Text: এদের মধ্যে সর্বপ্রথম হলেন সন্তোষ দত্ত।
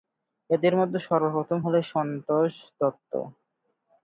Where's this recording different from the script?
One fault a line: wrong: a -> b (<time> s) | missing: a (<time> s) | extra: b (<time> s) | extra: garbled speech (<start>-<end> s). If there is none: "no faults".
no faults